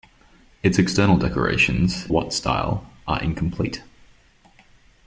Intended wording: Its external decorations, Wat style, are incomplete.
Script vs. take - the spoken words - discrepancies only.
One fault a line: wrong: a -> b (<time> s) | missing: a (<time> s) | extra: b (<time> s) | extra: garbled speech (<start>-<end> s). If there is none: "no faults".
no faults